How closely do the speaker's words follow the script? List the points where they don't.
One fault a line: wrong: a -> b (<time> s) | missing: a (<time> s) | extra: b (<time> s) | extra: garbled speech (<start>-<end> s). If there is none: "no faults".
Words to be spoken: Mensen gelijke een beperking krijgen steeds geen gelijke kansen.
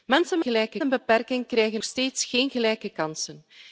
no faults